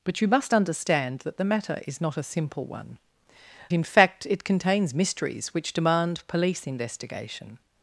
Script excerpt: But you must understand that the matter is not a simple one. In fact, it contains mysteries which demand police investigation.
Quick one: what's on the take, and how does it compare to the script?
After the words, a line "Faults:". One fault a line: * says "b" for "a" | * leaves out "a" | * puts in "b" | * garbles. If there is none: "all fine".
But you must understand that the matter is not a simple one. In fact, it contains mysteries which demand police investigation.
Faults:
all fine